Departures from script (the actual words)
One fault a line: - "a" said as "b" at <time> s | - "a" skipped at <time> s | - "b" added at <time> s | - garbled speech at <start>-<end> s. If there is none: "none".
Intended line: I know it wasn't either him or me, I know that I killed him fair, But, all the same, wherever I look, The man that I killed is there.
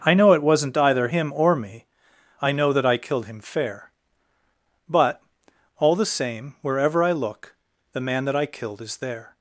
none